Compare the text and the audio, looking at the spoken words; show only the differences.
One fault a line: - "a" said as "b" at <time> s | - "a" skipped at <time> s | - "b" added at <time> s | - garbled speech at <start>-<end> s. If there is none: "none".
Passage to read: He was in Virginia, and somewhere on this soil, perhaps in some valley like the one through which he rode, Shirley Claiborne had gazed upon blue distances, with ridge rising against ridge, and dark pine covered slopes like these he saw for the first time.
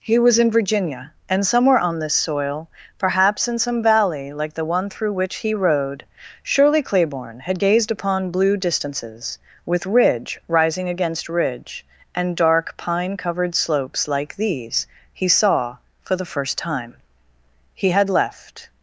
- "He had left" added at 17.7 s